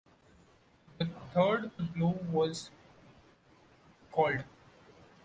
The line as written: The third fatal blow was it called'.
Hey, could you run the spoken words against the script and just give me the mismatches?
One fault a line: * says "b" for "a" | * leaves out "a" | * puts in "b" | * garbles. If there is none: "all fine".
* leaves out "fatal"
* leaves out "it"